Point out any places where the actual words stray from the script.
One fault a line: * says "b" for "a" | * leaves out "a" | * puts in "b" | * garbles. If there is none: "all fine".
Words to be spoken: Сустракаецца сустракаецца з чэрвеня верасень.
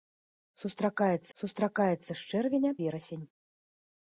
all fine